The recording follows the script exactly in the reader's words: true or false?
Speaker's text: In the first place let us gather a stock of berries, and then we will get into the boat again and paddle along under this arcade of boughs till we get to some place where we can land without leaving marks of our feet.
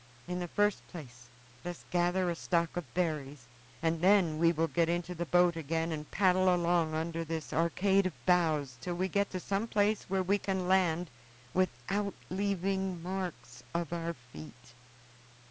false